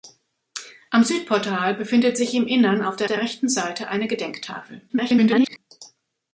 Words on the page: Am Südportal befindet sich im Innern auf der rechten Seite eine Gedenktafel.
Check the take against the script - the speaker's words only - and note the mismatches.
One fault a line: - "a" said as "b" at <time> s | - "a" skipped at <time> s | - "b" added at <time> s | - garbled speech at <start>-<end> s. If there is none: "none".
- "der" added at 3.0 s
- garbled speech at 4.9-5.6 s